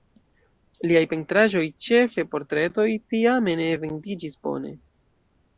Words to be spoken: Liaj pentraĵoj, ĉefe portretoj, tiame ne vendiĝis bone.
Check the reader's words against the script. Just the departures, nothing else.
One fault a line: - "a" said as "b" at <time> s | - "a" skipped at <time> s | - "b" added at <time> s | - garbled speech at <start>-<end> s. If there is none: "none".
none